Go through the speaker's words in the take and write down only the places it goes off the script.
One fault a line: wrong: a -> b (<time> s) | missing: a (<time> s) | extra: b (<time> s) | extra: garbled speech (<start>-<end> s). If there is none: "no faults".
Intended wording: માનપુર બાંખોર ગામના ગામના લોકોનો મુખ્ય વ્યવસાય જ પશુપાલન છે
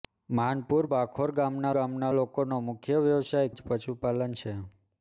no faults